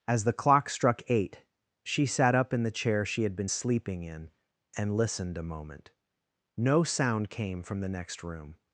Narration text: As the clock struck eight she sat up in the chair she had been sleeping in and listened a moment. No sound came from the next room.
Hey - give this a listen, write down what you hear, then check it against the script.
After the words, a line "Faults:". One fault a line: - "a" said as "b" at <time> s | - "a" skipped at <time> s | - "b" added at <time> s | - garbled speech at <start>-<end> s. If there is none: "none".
As the clock struck eight she sat up in the chair she had been sleeping in and listened a moment. No sound came from the next room.
Faults:
none